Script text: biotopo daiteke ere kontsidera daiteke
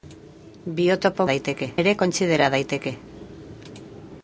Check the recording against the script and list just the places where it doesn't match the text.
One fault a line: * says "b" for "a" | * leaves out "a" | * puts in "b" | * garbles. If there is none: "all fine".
all fine